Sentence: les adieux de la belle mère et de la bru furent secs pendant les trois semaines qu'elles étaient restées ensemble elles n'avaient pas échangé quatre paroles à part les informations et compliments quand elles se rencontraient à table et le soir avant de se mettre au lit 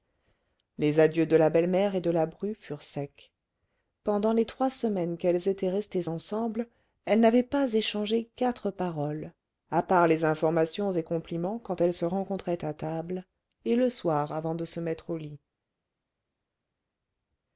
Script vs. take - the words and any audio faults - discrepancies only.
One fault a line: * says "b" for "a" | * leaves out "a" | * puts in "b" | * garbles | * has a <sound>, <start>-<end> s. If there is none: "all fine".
all fine